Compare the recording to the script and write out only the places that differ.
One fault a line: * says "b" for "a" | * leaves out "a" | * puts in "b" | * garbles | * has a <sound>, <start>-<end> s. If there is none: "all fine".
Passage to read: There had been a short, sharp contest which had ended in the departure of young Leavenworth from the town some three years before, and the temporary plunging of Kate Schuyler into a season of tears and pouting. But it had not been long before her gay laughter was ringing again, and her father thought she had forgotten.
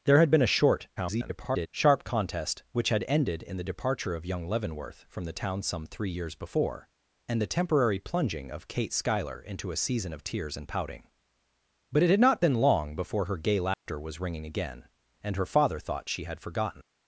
* garbles
* has a dropout, 13.7-13.9 s